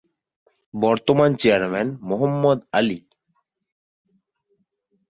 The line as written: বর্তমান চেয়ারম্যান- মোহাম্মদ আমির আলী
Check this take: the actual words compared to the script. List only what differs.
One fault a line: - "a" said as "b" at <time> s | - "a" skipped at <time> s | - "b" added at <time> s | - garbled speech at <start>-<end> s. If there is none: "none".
- "আমির" skipped at 2.6 s